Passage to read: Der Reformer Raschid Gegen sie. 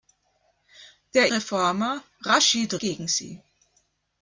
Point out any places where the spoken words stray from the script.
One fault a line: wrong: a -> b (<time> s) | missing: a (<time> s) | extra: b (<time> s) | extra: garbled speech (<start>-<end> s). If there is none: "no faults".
no faults